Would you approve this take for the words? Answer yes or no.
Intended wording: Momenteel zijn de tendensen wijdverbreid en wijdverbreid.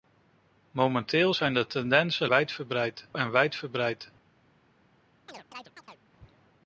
yes